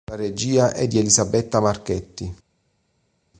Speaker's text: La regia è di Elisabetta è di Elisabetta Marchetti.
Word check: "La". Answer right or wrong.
right